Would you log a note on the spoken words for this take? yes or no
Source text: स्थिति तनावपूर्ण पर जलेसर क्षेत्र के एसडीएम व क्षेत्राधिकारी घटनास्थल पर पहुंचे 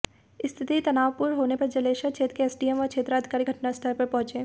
yes